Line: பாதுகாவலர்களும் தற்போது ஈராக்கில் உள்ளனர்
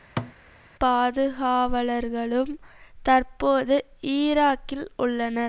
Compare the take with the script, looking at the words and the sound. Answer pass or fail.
fail